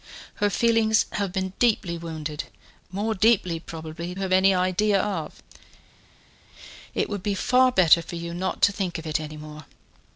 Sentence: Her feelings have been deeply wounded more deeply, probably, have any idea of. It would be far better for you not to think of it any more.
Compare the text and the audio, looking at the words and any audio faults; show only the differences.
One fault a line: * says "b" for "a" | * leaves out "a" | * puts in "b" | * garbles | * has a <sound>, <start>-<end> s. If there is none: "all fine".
all fine